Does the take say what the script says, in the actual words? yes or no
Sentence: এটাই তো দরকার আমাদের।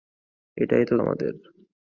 no